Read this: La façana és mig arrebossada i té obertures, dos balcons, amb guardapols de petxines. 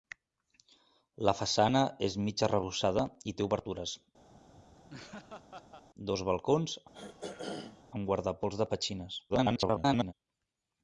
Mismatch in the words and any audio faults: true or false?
true